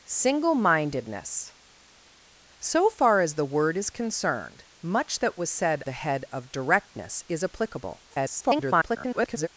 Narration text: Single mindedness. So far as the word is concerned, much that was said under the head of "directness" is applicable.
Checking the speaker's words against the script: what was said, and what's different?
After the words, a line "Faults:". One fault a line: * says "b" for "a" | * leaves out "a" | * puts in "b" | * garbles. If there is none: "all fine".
Single mindedness. So far as the word is concerned, much that was said the head of "directness" is applicable. [garbled]
Faults:
* leaves out "under"
* garbles